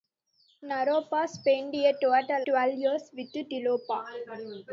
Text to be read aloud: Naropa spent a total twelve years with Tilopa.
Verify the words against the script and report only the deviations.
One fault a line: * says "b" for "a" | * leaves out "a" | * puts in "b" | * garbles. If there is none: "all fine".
all fine